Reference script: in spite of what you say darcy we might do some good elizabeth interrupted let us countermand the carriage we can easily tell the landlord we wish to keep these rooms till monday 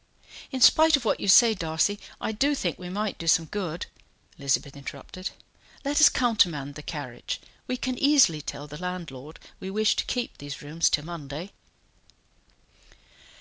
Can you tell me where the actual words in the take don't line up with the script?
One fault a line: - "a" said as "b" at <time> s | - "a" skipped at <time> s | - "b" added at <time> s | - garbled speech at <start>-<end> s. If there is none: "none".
- "i do think" added at 2.2 s